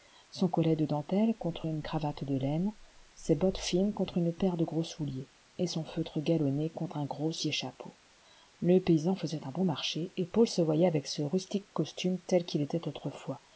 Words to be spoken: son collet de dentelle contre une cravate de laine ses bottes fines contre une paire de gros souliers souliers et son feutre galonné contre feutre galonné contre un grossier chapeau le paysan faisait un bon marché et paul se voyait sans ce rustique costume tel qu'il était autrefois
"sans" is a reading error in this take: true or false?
true